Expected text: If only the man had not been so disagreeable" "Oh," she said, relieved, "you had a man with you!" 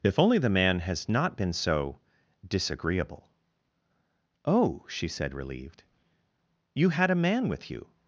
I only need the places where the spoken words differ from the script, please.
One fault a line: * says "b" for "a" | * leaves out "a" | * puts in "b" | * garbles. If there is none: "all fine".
* says "has" for "had"